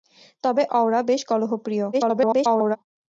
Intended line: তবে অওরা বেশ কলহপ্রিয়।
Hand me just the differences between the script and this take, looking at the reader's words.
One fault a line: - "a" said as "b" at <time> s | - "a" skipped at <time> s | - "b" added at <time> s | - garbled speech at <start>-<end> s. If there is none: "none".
- garbled speech at 1.9-2.8 s